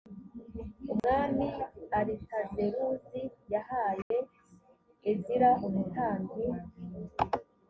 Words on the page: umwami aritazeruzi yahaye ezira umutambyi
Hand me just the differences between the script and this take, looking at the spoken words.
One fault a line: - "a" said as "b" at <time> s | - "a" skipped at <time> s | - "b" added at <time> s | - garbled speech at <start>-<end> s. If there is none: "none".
none